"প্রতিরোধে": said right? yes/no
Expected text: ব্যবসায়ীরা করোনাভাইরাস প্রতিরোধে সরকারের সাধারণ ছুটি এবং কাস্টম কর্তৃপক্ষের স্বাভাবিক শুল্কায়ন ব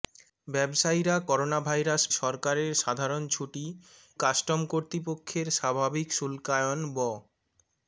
no